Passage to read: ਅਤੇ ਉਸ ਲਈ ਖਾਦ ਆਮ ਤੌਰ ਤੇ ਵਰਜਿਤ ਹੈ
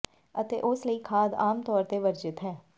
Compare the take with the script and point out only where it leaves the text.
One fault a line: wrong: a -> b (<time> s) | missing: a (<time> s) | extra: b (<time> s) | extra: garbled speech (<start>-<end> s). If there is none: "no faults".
no faults